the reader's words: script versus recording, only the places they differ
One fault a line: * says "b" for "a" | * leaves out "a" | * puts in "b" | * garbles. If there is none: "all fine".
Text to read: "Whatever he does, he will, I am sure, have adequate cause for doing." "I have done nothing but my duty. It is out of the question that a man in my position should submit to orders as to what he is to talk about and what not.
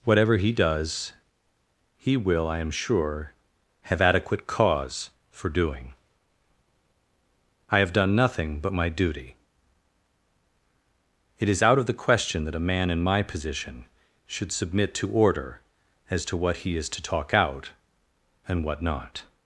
* says "order" for "orders"
* says "out" for "about"